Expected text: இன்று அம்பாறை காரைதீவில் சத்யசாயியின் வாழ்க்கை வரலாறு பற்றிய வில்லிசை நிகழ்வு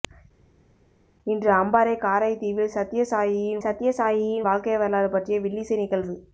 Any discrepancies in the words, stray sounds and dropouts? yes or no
yes